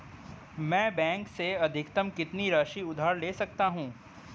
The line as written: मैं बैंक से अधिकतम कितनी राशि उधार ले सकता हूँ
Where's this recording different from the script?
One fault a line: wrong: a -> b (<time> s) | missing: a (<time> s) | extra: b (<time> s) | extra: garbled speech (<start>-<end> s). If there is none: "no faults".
no faults